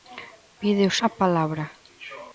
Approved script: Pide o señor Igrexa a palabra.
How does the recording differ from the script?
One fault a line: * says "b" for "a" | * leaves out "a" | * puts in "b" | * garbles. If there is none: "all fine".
* leaves out "señor Igrexa"